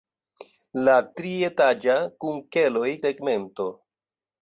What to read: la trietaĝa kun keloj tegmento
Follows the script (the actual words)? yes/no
yes